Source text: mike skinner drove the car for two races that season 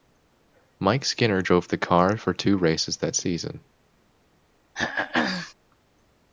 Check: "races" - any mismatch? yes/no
no